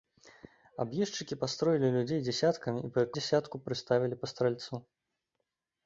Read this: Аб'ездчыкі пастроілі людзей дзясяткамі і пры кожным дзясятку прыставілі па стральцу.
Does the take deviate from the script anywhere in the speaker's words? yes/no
yes